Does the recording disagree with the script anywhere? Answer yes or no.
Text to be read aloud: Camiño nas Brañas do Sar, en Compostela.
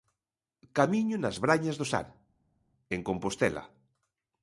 no